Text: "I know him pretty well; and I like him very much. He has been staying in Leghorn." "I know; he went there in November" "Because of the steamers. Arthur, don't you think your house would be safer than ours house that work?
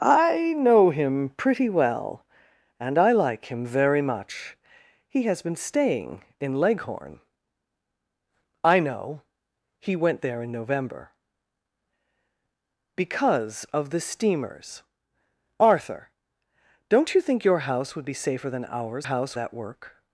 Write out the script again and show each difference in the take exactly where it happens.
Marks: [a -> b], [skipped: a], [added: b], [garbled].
"I know him pretty well; and I like him very much. He has been staying in Leghorn." "I know; he went there in November" "Because of the steamers. Arthur, don't you think your house would be safer than ours house that work?